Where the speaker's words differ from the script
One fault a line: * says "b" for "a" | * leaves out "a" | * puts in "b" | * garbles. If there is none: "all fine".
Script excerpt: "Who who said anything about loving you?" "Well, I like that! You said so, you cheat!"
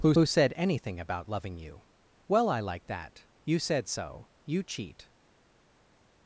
all fine